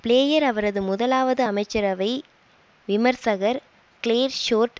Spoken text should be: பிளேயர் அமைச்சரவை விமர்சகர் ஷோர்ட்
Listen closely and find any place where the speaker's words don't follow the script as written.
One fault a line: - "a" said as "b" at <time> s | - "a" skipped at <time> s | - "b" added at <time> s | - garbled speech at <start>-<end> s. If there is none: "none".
- "அவரது முதலாவது" added at 0.4 s
- "கிளேர்" added at 4.0 s